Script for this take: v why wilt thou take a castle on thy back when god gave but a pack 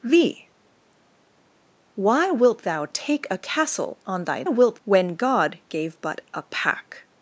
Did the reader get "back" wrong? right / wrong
wrong